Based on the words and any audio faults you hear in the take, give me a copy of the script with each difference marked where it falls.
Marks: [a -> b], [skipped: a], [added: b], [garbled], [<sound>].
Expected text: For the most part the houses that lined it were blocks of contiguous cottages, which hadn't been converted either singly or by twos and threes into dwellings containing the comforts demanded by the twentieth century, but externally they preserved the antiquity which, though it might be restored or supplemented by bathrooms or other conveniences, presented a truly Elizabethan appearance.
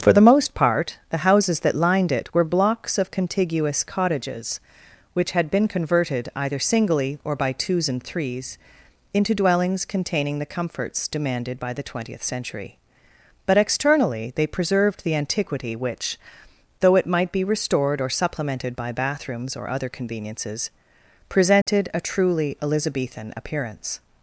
For the most part the houses that lined it were blocks of contiguous cottages, which [hadn't -> had] been converted either singly or by twos and threes into dwellings containing the comforts demanded by the twentieth century, but externally they preserved the antiquity which, though it might be restored or supplemented by bathrooms or other conveniences, presented [dropout] a truly Elizabethan appearance.